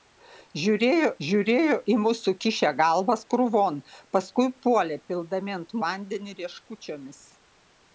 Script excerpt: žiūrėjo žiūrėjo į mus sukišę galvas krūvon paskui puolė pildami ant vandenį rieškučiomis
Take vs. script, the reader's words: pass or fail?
pass